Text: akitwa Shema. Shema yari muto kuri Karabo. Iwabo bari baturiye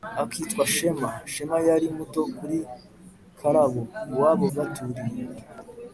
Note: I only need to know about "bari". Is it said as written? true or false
false